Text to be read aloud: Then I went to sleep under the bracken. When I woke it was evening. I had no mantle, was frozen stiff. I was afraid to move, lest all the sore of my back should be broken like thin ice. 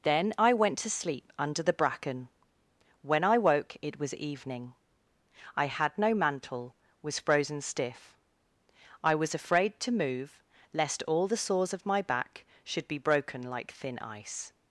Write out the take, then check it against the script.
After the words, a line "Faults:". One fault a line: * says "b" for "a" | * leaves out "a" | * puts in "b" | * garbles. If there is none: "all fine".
Then I went to sleep under the bracken. When I woke it was evening. I had no mantle, was frozen stiff. I was afraid to move, lest all the sores of my back should be broken like thin ice.
Faults:
* says "sores" for "sore"